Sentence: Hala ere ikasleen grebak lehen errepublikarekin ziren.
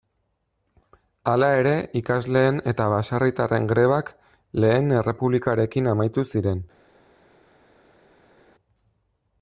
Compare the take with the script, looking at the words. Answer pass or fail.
fail